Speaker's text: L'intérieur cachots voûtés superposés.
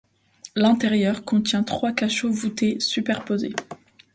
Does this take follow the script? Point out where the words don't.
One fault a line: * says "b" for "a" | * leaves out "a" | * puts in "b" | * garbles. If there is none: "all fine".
* puts in "contient trois"